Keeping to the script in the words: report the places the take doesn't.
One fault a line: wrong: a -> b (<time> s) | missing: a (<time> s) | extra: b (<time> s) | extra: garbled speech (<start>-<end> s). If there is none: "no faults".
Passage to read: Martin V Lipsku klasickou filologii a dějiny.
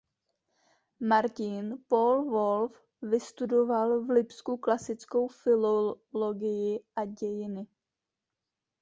extra: Paul Wolf vystudoval (1.9 s)